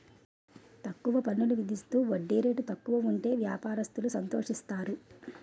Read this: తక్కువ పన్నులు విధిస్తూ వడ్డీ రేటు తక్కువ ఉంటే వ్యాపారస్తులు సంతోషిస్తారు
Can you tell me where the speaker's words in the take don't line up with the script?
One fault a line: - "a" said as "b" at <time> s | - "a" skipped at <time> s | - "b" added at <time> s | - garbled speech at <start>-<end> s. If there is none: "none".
none